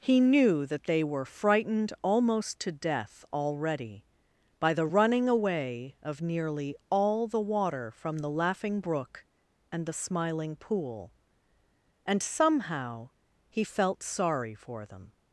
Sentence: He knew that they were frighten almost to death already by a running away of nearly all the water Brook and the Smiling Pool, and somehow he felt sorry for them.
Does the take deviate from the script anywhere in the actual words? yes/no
yes